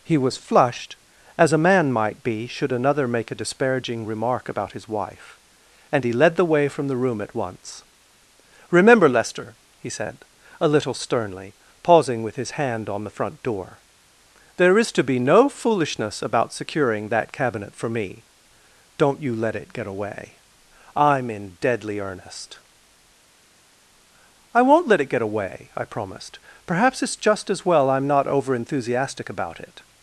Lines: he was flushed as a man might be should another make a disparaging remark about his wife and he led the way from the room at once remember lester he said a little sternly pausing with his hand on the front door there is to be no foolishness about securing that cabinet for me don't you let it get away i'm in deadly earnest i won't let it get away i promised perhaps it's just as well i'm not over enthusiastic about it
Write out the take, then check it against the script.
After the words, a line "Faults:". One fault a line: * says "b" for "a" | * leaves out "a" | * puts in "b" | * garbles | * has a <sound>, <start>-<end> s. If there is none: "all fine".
he was flushed as a man might be should another make a disparaging remark about his wife and he led the way from the room at once remember lester he said a little sternly pausing with his hand on the front door there is to be no foolishness about securing that cabinet for me don't you let it get away i'm in deadly earnest i won't let it get away i promised perhaps it's just as well i'm not over enthusiastic about it
Faults:
all fine